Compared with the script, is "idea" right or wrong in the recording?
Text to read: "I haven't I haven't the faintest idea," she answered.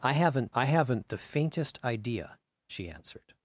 right